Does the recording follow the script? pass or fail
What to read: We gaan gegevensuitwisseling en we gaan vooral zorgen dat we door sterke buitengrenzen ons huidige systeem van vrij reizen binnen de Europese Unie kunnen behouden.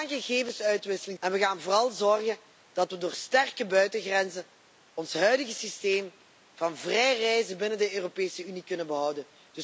pass